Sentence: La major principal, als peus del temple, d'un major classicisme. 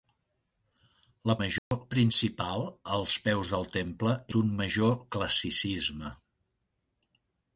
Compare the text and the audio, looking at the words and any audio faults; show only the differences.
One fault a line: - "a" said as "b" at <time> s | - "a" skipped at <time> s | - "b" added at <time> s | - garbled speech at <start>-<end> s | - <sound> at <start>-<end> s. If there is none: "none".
- dropout at 1.6-1.7 s